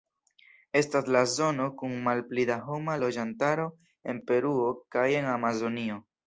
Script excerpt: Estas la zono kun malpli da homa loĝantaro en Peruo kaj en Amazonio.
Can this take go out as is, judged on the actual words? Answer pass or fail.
pass